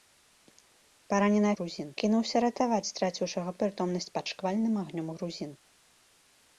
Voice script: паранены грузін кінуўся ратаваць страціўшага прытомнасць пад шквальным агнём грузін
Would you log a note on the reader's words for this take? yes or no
no